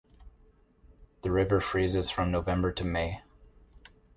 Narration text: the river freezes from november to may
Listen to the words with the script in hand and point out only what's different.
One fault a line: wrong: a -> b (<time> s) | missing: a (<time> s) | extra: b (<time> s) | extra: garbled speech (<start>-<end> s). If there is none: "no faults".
no faults